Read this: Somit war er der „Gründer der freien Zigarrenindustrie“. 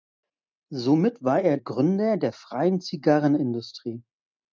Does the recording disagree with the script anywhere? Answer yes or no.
yes